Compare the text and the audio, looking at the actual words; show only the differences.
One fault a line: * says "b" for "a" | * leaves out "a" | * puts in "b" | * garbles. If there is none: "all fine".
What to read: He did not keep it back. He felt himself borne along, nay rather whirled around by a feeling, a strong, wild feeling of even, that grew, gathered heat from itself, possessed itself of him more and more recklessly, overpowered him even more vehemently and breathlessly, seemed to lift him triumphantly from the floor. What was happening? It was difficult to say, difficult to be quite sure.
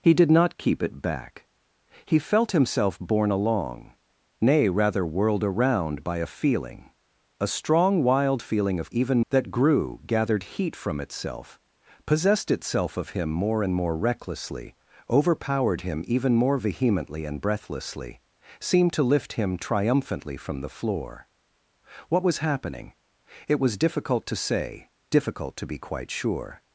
all fine